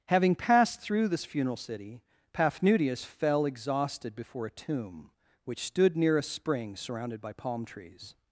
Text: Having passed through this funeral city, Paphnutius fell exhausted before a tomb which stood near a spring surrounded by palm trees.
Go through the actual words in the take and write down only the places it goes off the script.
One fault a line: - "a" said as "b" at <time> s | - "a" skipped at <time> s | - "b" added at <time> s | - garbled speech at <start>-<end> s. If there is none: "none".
none